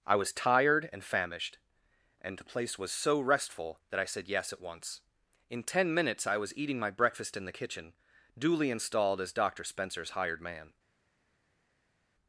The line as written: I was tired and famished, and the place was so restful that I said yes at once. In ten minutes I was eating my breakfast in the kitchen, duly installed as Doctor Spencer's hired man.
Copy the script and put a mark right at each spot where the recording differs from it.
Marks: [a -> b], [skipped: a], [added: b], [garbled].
I was tired and famished, and the place was so restful that I said yes at once. In ten minutes I was eating my breakfast in the kitchen, duly installed as Doctor Spencer's hired man.